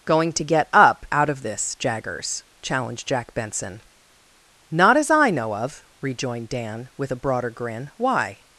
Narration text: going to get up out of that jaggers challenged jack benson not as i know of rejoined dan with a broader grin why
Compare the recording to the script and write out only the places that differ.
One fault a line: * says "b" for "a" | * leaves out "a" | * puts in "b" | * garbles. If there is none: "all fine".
* says "this" for "that"